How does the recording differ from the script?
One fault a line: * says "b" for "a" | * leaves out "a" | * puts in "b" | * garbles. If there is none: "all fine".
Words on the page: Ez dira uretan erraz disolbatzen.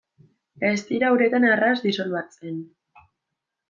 all fine